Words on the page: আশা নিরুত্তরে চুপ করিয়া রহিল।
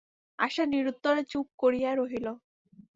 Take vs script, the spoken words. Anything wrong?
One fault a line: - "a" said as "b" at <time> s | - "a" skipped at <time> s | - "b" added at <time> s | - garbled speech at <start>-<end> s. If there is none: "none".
none